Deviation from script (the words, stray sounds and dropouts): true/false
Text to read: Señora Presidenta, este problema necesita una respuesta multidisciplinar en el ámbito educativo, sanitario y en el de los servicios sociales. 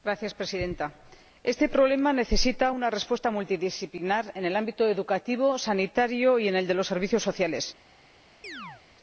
true